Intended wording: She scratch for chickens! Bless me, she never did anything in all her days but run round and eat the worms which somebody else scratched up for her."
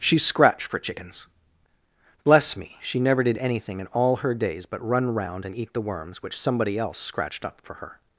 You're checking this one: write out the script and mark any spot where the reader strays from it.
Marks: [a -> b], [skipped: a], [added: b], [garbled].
She [scratch -> scratched] for chickens! Bless me, she never did anything in all her days but run round and eat the worms which somebody else scratched up for her."